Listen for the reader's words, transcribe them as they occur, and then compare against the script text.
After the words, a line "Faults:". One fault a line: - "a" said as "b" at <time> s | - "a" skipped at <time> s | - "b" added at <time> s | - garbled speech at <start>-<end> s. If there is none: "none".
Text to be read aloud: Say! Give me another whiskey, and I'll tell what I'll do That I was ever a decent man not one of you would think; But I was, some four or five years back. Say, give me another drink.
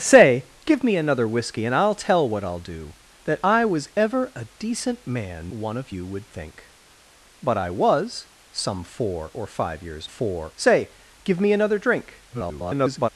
Say! Give me another whiskey, and I'll tell what I'll do That I was ever a decent man one of you would think; But I was, some four or five years four. Say, give me another drink. [garbled]
Faults:
- "not" skipped at 5.5 s
- "back" said as "four" at 10.0 s
- garbled speech at 12.3-13.1 s